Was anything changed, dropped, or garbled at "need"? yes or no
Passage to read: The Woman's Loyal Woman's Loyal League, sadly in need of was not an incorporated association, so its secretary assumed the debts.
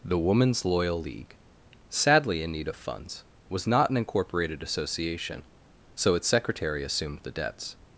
no